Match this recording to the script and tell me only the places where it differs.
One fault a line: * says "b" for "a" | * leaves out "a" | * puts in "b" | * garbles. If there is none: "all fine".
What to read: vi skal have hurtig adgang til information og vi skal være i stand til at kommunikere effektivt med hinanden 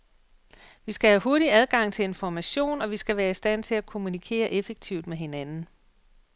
all fine